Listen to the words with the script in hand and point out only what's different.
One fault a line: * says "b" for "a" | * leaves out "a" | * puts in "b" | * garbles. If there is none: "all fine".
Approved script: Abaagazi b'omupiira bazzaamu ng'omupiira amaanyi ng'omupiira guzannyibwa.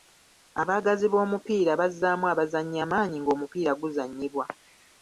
* says "abazannyi" for "ng'omupiira"